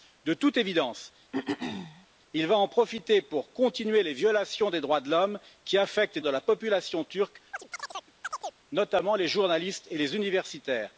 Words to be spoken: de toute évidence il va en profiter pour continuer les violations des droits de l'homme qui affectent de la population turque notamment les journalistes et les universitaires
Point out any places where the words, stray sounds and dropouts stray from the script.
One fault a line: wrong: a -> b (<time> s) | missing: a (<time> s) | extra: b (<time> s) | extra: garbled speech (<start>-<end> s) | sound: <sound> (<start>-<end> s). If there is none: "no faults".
sound: throat clearing (1.3-2.1 s)
sound: chirp (7.5-8.6 s)